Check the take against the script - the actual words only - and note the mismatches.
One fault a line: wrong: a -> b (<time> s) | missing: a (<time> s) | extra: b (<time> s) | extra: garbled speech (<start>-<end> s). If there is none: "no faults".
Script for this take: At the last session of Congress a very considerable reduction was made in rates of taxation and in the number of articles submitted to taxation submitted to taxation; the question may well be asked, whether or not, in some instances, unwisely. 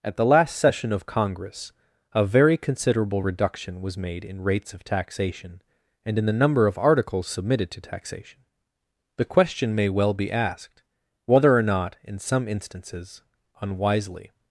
missing: submitted to taxation (8.4 s)